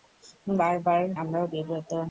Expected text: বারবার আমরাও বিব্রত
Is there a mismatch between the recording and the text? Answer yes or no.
no